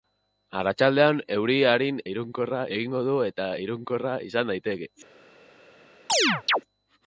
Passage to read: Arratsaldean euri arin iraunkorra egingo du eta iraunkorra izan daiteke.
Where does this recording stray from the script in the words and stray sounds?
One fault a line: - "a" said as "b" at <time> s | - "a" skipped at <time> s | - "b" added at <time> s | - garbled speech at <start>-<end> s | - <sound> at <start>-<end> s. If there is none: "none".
- chirp at 6.1-6.6 s